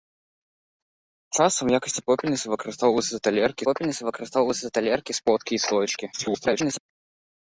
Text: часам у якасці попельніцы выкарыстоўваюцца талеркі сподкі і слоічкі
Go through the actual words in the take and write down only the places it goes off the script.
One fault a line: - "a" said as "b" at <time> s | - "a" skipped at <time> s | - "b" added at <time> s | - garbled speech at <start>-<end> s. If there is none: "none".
- "попельніцы выкарыстоўваюцца талеркі" added at 3.6 s
- garbled speech at 6.1-6.8 s